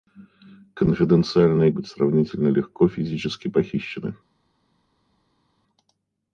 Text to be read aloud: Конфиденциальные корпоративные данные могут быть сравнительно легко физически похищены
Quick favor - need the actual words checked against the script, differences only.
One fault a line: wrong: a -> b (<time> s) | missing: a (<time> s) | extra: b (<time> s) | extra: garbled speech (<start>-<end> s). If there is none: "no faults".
missing: корпоративные данные могут (1.7 s)